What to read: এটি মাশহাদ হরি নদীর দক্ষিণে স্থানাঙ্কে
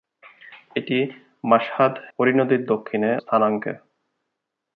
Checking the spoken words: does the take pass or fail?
pass